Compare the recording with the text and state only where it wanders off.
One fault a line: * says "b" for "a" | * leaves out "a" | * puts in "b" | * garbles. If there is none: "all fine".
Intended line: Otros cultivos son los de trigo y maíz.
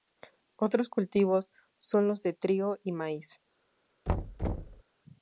all fine